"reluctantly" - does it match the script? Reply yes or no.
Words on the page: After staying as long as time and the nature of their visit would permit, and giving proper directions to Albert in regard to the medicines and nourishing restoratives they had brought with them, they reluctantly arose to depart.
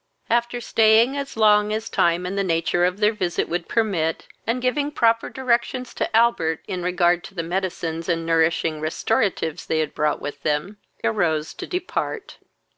no